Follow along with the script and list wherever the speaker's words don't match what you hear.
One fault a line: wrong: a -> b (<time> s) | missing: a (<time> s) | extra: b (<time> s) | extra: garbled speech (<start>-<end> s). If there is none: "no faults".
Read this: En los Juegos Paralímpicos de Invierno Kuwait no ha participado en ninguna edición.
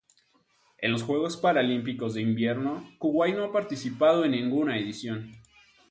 no faults